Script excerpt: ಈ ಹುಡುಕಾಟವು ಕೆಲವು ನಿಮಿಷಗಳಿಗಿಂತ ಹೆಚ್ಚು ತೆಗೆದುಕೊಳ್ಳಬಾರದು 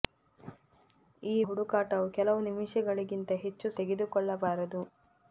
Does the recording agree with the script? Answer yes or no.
yes